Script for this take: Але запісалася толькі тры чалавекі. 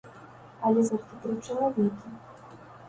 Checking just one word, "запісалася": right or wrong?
wrong